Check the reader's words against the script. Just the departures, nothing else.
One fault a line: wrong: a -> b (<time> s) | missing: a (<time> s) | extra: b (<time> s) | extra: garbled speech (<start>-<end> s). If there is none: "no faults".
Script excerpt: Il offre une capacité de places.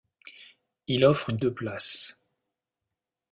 missing: capacité (1.4 s)